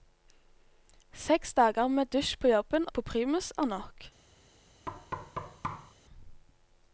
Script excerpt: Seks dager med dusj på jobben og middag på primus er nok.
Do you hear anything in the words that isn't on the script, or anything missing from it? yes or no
yes